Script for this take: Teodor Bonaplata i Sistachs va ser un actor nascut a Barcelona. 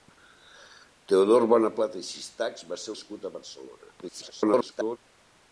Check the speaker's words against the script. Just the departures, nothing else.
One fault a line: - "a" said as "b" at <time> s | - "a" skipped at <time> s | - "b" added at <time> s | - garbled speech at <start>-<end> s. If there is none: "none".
- "un actor" skipped at 3.0 s
- garbled speech at 4.0-5.0 s